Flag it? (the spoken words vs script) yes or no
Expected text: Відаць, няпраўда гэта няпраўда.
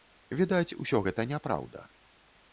yes